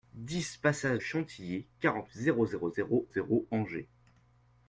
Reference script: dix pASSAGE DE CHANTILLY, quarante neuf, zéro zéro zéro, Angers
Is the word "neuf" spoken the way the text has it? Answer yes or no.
no